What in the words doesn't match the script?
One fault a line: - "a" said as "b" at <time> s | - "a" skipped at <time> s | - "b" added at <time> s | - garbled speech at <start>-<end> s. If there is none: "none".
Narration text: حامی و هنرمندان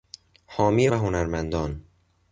none